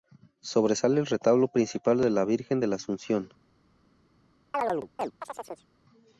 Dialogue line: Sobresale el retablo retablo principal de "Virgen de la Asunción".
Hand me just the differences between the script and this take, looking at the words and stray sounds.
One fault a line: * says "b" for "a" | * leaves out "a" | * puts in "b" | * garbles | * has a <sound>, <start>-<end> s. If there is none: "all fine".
* leaves out "retablo"
* puts in "la"
* has a chirp, 4.5-5.7 s